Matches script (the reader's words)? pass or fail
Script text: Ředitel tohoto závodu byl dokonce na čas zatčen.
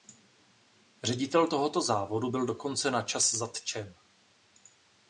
pass